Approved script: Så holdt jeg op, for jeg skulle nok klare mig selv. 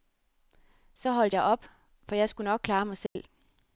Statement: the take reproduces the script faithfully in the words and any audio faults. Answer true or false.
false